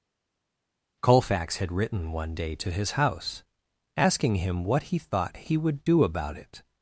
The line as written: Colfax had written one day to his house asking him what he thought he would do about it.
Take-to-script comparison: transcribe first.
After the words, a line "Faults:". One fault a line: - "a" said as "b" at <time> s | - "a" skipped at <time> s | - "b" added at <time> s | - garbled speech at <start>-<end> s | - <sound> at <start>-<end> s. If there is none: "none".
Colfax had written one day to his house asking him what he thought he would do about it.
Faults:
none